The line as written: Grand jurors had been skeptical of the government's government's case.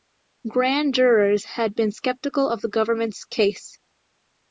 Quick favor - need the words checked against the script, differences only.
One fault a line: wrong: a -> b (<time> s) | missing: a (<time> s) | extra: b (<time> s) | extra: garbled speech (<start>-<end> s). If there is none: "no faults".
missing: government's (3.3 s)